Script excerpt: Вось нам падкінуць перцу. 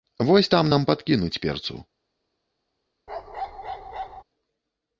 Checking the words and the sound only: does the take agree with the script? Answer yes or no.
no